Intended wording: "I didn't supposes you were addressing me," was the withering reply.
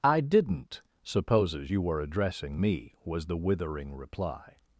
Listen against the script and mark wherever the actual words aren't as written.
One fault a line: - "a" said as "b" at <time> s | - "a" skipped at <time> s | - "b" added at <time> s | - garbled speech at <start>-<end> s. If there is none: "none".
none